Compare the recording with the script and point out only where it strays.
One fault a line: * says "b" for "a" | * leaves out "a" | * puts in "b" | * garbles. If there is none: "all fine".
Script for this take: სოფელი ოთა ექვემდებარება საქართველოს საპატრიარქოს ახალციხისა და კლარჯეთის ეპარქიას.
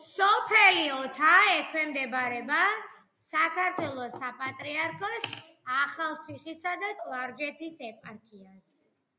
all fine